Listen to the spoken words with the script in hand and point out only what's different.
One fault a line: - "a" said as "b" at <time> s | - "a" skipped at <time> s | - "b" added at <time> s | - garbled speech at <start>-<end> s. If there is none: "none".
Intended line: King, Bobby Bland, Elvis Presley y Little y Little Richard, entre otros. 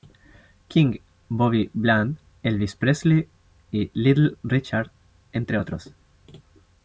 - "y Little" skipped at 4.3 s